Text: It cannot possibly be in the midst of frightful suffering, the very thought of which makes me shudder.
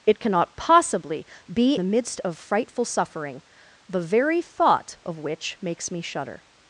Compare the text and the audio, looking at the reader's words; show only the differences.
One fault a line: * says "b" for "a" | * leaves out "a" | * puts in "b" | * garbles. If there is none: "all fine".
* leaves out "in"